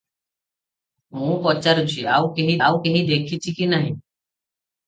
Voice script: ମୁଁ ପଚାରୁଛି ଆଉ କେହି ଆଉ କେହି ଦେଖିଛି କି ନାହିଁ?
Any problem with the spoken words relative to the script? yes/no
no